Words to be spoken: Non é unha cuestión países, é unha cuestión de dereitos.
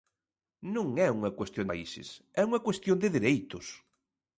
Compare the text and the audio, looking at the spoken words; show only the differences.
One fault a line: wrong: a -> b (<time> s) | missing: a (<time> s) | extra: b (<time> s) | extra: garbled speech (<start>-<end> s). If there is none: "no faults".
no faults